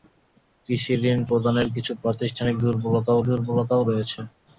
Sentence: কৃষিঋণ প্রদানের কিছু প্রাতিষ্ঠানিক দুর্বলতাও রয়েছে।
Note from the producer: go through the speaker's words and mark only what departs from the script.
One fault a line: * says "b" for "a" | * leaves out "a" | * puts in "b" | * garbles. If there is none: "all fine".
* puts in "দুর্বলতাও"